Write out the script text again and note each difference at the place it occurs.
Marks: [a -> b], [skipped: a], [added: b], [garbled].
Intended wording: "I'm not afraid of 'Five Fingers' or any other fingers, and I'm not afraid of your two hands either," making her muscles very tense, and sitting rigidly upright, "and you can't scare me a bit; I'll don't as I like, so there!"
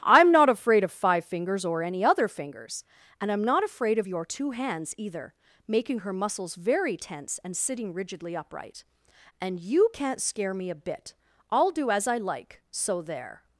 "I'm not afraid of 'Five Fingers' or any other fingers, and I'm not afraid of your two hands either," making her muscles very tense, and sitting rigidly upright, "and you can't scare me a bit; I'll [don't -> do] as I like, so there!"